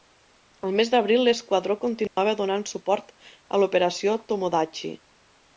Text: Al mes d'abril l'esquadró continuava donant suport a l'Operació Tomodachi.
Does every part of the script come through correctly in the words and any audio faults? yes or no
no